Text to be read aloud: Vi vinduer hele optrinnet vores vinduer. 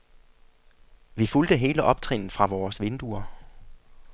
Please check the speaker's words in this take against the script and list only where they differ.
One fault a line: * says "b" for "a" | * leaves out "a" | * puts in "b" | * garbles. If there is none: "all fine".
* says "fulgte" for "vinduer"
* puts in "fra"